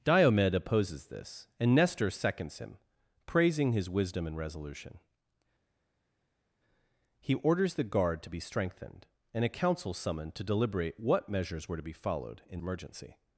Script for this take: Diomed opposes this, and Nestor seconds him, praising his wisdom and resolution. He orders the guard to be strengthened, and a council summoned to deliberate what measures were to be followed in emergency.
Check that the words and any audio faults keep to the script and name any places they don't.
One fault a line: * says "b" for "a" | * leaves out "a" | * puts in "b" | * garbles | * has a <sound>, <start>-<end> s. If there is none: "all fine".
all fine